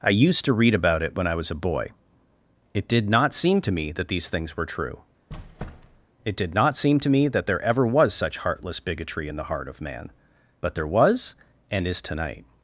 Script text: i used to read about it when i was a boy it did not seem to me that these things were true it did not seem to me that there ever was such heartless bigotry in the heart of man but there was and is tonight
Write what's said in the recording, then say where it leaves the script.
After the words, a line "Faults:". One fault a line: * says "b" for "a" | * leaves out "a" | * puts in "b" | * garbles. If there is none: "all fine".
i used to read about it when i was a boy it did not seem to me that these things were true it did not seem to me that there ever was such heartless bigotry in the heart of man but there was and is tonight
Faults:
all fine